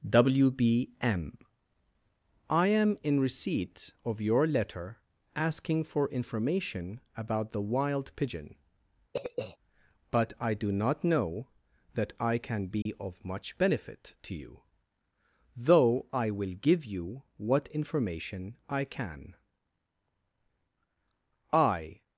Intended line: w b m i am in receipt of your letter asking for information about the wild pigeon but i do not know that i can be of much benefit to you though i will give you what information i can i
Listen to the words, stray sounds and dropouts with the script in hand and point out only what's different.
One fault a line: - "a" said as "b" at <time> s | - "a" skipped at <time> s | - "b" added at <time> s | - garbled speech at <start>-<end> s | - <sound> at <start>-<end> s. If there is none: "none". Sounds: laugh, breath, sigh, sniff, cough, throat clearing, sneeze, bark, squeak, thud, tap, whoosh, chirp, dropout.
- throat clearing at 9.1-9.6 s
- dropout at 12.8-12.9 s